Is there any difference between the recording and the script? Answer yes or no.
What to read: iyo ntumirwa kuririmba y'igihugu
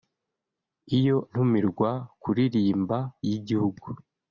no